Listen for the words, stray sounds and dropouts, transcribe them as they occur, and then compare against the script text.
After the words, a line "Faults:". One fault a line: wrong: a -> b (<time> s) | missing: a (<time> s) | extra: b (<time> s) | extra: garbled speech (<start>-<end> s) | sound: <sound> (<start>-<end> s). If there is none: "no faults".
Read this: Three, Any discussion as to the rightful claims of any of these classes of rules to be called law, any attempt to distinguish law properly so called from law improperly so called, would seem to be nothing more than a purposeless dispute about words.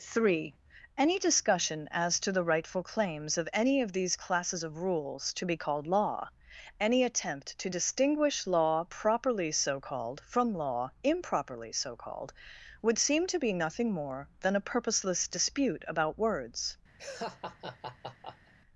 Three, Any discussion as to the rightful claims of any of these classes of rules to be called law, any attempt to distinguish law properly so called from law improperly so called, would seem to be nothing more than a purposeless dispute about words.
Faults:
sound: laugh (17.0-18.5 s)